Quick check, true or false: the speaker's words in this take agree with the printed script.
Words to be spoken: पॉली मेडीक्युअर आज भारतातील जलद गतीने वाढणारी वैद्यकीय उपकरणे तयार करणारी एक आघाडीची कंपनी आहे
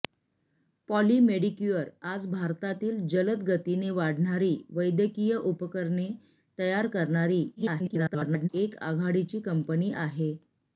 false